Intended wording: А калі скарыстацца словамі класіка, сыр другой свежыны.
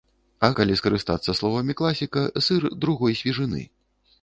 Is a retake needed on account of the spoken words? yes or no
no